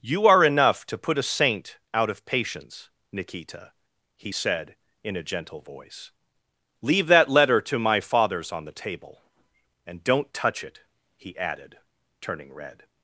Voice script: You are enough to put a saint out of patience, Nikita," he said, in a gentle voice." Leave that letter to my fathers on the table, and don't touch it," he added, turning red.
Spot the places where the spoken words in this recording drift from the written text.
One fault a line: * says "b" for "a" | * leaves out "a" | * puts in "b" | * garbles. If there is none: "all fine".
all fine